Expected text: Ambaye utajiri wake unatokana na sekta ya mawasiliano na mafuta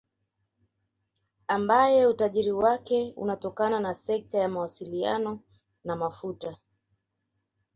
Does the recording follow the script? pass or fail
pass